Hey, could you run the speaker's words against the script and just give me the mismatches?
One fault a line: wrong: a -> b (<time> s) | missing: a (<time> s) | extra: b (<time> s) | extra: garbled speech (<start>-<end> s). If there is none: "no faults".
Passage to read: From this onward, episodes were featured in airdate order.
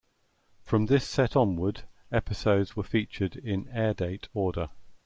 extra: set (1.1 s)